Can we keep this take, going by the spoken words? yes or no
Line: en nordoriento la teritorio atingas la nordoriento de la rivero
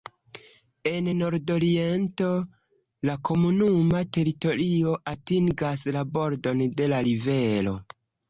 no